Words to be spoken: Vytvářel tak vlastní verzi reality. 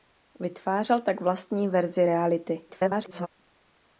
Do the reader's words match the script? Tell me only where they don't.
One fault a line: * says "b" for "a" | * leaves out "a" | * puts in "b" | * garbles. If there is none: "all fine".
* garbles